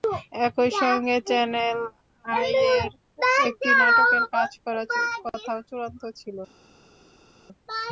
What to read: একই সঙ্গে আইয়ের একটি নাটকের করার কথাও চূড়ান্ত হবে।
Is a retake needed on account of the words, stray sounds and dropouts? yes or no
yes